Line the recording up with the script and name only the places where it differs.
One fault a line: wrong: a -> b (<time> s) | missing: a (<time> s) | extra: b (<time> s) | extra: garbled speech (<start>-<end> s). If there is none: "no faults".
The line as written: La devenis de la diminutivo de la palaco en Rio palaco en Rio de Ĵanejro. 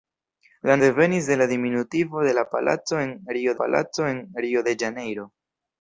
no faults